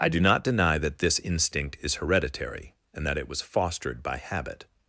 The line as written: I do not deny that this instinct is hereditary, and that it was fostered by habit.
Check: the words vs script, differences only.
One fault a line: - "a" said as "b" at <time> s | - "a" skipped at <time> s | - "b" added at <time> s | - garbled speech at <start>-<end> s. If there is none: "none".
none